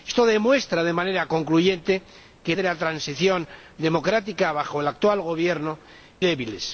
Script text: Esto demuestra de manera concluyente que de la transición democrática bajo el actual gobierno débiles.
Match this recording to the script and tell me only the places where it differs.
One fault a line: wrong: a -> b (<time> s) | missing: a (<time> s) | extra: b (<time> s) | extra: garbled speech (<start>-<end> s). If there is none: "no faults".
no faults